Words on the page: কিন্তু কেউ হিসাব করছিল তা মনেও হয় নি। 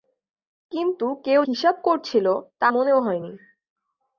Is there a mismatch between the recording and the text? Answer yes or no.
no